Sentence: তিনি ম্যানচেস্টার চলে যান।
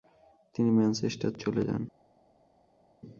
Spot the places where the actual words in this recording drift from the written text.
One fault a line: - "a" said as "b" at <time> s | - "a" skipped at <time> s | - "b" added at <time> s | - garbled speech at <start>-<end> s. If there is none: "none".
none